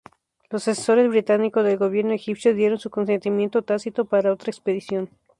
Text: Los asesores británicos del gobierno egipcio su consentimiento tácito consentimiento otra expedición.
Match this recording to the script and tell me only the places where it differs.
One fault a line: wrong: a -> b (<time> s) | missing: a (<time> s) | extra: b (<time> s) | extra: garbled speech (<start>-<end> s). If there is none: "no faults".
extra: dieron (2.5 s)
wrong: consentimiento -> para (4.0 s)